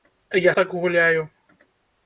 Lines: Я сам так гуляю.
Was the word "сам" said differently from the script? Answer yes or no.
yes